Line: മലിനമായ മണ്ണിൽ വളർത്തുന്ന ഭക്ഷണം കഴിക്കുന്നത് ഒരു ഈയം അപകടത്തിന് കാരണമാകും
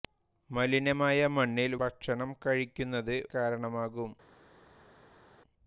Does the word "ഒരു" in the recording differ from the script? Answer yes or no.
yes